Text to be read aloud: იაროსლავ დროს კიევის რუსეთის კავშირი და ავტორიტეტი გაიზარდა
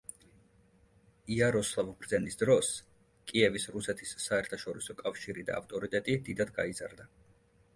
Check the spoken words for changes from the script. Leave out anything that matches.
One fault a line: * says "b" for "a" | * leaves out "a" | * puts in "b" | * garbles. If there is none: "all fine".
* puts in "ბრძენის"
* puts in "საერთაშორისო"
* puts in "დიდად"